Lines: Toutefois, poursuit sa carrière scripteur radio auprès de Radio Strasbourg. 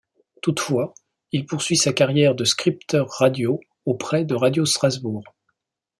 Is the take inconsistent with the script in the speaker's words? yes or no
yes